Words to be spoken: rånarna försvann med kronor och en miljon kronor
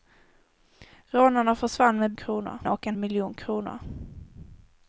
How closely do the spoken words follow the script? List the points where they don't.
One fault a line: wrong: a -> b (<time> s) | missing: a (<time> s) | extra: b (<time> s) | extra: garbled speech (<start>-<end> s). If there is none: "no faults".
no faults